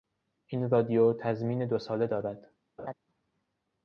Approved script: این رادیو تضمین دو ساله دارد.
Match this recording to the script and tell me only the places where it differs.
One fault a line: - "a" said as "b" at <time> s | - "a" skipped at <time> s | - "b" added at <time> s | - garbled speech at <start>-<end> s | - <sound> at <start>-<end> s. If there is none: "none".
- laugh at 2.8-2.9 s